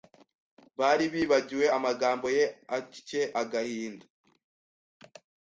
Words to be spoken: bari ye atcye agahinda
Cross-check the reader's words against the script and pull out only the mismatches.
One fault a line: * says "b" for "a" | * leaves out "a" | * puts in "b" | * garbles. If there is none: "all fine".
* puts in "bibagiwe amagambo"